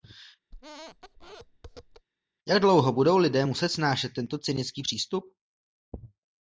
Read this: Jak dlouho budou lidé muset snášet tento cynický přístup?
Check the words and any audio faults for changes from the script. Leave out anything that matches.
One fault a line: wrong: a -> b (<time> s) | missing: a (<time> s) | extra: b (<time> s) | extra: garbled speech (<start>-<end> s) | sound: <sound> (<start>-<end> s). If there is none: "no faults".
sound: squeak (0.5-2.1 s)